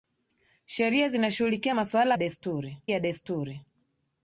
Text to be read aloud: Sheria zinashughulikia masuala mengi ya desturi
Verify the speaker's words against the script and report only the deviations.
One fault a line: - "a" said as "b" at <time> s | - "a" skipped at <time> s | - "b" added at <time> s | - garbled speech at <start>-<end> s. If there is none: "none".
- "mengi" said as "desturi" at 2.2 s